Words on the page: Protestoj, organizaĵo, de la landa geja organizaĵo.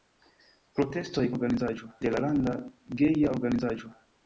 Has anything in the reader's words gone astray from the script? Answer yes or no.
no